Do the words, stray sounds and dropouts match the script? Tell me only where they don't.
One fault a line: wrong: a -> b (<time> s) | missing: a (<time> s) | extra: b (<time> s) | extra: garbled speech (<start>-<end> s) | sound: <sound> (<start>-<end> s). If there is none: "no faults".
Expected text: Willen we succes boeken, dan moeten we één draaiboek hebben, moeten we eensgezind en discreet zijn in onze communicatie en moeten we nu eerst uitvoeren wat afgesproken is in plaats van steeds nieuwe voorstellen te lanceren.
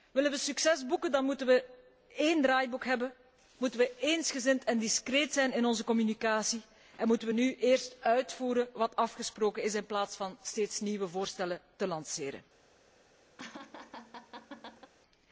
sound: laugh (13.4-14.9 s)